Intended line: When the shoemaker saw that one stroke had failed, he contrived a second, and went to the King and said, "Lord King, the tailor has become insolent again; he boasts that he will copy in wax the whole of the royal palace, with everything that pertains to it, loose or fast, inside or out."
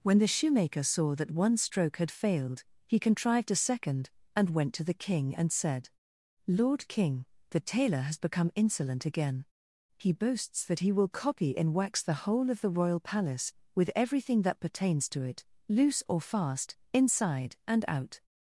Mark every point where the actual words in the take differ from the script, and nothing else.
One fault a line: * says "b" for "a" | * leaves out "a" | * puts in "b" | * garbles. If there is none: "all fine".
* says "and" for "or"